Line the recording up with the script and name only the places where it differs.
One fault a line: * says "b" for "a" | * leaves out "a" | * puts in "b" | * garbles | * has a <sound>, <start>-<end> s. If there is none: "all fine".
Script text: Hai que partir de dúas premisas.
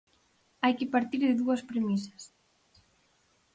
all fine